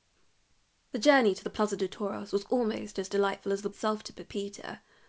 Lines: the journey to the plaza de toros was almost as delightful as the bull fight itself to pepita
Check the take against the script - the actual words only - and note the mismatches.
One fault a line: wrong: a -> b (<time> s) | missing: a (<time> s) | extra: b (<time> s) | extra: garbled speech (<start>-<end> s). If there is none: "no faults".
missing: bull fight (3.7 s)